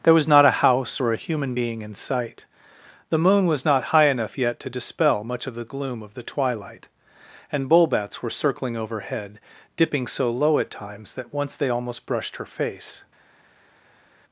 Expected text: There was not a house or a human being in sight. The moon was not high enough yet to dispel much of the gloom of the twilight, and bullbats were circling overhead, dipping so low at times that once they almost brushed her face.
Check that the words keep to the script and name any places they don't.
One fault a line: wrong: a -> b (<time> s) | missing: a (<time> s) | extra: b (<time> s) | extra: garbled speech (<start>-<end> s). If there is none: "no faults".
no faults